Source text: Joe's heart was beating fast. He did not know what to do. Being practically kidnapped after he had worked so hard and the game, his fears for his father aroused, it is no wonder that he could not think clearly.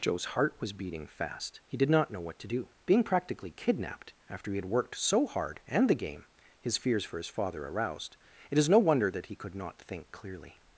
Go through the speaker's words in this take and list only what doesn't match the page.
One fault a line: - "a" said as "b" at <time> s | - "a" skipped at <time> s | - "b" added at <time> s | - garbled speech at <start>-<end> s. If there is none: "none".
none